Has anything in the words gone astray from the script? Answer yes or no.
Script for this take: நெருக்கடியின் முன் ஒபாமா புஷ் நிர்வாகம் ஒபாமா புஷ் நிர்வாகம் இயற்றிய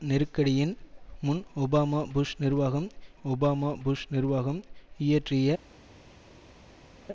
no